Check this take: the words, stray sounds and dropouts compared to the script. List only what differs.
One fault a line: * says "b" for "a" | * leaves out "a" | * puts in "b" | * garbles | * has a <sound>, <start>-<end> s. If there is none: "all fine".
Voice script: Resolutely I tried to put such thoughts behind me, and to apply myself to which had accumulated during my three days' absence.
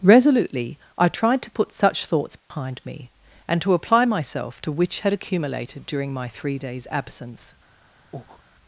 * has a dropout, 2.4-2.5 s
* has a breath, 8.1-8.4 s